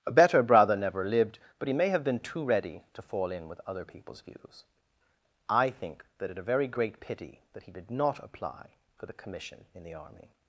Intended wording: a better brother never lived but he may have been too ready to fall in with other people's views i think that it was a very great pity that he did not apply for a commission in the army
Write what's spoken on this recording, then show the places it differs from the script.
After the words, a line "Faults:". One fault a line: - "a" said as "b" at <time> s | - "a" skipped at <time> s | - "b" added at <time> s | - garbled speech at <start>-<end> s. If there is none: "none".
a better brother never lived but he may have been too ready to fall in with other people's views i think that it a very great pity that he did not apply for the commission in the army
Faults:
- "was" skipped at 6.4 s
- "a" said as "the" at 9.1 s